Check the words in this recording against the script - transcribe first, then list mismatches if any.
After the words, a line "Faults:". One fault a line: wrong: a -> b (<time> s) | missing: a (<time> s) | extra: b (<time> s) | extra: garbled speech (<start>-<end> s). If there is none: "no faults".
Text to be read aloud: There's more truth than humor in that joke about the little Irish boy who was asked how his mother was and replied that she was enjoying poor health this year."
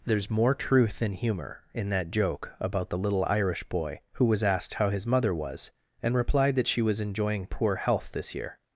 There's more truth than humor in that joke about the little Irish boy who was asked how his mother was and replied that she was enjoying poor health this year."
Faults:
no faults